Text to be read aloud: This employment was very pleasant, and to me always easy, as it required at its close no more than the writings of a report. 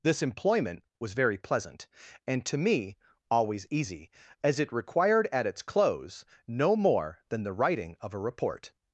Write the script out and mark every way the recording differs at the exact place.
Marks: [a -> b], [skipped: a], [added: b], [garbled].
This employment was very pleasant, and to me always easy, as it required at its close no more than the [writings -> writing] of a report.